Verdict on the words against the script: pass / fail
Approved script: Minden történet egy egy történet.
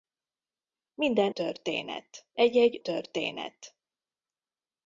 pass